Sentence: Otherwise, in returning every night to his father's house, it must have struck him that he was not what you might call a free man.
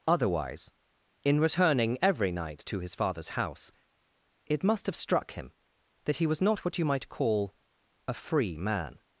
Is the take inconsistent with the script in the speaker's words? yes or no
no